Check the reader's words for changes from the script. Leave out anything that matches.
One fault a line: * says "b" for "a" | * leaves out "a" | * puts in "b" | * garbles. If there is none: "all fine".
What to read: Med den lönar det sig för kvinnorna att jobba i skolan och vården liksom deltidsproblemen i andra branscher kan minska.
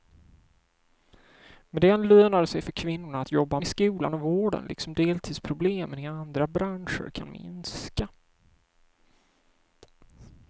all fine